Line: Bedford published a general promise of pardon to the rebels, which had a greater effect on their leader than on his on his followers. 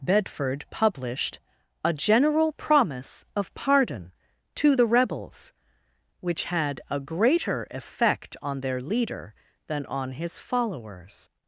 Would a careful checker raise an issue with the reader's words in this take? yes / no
yes